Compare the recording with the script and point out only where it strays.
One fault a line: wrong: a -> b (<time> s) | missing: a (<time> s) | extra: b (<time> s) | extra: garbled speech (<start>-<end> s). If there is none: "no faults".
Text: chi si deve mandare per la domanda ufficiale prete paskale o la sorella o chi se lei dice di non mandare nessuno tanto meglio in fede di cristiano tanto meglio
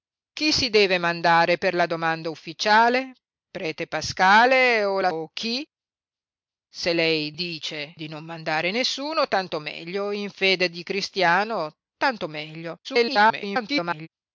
missing: sorella (5.1 s)
extra: garbled speech (12.8-14.1 s)